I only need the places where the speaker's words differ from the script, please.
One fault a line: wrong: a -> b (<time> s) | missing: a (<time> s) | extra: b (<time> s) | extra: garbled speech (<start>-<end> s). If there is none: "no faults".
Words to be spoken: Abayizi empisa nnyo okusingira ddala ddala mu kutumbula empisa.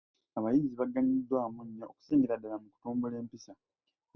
wrong: empisa -> baganyuddwamu (0.8 s)
missing: ddala (2.6 s)